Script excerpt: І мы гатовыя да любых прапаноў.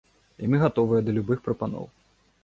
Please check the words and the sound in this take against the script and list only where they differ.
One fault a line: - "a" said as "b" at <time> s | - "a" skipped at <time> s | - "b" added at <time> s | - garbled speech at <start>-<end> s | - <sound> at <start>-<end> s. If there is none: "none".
none